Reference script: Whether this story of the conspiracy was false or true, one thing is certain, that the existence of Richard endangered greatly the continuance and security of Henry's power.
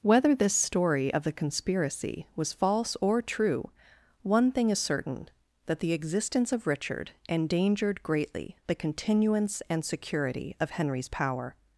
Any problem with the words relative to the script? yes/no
no